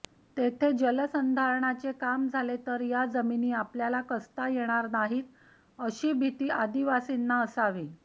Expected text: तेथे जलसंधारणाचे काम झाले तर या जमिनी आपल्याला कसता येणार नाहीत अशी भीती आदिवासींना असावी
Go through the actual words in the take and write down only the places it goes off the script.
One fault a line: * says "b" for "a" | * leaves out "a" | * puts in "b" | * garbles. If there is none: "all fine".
all fine